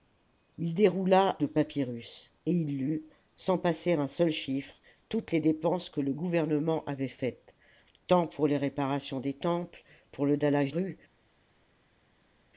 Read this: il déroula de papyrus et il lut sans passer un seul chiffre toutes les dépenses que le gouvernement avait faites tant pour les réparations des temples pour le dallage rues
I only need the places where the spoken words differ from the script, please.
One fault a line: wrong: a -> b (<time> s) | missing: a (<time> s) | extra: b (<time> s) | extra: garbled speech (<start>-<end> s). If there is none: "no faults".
no faults